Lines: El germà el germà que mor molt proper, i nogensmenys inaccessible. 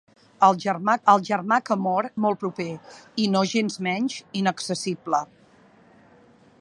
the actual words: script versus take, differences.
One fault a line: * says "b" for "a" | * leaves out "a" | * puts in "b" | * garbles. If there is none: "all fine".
all fine